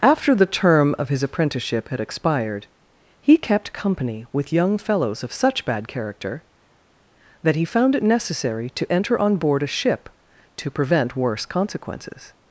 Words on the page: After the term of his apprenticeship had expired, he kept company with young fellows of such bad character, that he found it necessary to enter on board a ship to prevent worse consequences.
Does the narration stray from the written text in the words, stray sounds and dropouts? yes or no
no